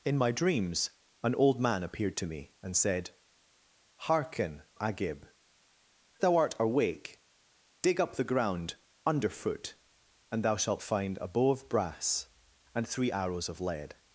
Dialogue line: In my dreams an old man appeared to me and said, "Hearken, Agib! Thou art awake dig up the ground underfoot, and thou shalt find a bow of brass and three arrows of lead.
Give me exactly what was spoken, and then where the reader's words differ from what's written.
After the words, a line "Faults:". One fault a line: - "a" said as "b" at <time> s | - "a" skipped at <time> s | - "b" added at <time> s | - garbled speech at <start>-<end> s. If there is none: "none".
In my dreams an old man appeared to me and said, "Hearken, Agib! Thou art awake dig up the ground underfoot, and thou shalt find a bow of brass and three arrows of lead.
Faults:
none